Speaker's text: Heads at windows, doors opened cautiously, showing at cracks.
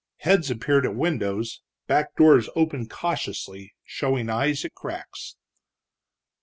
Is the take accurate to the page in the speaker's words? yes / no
no